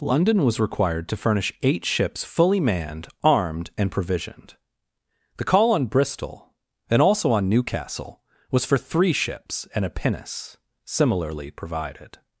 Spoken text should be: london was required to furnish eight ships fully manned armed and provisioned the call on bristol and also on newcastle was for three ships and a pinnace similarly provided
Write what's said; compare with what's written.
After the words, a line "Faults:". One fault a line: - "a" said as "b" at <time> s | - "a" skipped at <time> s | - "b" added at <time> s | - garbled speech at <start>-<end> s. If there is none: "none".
london was required to furnish eight ships fully manned armed and provisioned the call on bristol and also on newcastle was for three ships and a pinnace similarly provided
Faults:
none